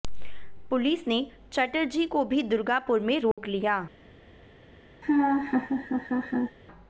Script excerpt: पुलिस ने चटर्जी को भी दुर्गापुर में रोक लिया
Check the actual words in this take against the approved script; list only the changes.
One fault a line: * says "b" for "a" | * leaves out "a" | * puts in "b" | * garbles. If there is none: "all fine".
all fine